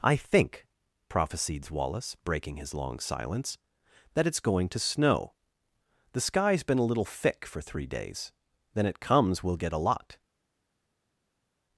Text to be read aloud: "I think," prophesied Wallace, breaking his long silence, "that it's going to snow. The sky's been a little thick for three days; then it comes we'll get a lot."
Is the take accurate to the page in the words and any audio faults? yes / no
yes